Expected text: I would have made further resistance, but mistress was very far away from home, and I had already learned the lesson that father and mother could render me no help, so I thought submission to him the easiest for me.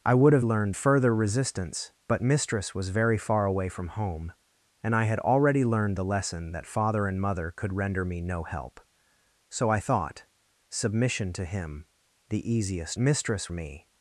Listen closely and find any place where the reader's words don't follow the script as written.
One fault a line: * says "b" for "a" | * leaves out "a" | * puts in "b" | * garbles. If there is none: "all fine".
* says "learned" for "made"
* says "mistress" for "for"